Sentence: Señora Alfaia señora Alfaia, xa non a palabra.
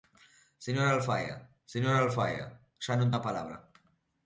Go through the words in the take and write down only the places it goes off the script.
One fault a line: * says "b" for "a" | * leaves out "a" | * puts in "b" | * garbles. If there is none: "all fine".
all fine